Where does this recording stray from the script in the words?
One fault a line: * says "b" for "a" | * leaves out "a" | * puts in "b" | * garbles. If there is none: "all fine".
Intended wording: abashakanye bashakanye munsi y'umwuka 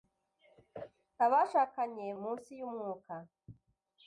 * leaves out "bashakanye"